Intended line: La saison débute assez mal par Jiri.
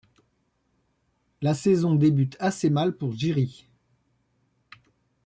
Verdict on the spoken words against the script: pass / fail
fail